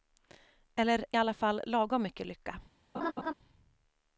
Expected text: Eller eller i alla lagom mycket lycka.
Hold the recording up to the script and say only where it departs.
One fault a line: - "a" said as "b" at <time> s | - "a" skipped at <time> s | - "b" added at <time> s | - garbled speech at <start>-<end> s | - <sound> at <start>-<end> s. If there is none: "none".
- "eller" skipped at 1.1 s
- "fall" added at 1.3 s
- laugh at 2.9-3.3 s